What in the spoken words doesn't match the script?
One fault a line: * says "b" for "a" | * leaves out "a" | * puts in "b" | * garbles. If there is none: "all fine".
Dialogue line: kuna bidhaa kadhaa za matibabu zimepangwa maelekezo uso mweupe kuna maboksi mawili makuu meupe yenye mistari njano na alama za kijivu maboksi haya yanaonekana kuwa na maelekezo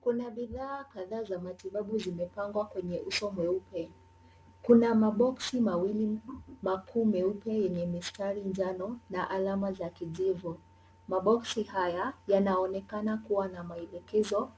* says "kwenye" for "maelekezo"